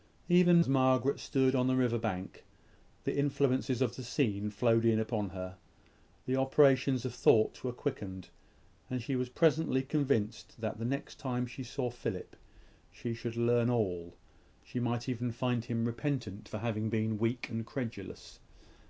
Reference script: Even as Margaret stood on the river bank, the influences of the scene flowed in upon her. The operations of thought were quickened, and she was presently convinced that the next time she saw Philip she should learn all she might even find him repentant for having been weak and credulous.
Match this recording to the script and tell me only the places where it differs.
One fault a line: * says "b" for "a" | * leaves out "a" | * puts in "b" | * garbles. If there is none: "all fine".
all fine